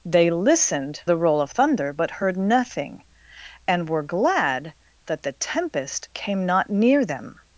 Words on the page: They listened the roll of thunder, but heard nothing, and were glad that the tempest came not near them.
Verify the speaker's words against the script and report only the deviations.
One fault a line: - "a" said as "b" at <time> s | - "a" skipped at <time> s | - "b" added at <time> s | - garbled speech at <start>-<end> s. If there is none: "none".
none